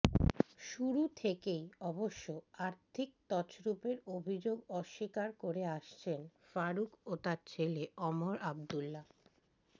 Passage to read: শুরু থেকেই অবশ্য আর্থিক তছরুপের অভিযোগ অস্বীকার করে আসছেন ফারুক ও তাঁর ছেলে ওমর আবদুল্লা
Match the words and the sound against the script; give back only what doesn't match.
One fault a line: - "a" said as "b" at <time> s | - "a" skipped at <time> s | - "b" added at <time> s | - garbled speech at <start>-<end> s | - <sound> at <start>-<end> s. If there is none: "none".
none